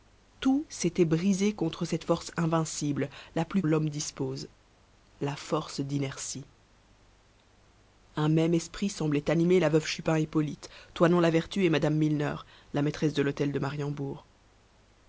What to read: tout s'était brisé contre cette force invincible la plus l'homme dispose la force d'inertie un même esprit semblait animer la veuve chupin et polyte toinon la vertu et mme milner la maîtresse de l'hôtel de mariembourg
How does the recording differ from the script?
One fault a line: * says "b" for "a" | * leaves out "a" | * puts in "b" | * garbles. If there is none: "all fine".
all fine